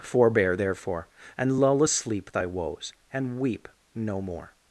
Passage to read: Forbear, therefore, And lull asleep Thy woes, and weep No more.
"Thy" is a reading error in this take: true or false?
false